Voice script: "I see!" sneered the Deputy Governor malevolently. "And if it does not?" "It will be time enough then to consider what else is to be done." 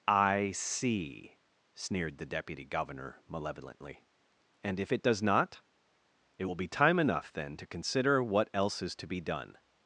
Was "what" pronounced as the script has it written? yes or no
yes